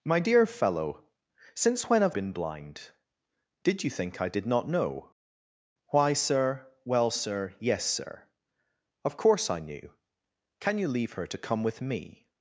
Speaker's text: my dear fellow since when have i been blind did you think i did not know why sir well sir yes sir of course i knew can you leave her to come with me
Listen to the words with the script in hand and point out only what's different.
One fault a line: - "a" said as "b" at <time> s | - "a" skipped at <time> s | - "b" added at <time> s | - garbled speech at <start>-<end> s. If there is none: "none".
- "i" skipped at 2.1 s